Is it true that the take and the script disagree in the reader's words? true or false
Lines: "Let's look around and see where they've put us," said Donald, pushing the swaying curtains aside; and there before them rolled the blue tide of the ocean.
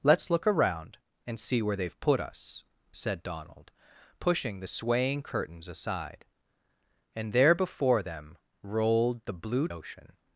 true